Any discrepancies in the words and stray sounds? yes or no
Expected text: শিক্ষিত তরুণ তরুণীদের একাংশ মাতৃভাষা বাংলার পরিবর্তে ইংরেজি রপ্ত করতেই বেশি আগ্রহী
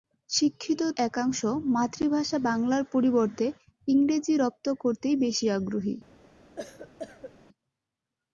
yes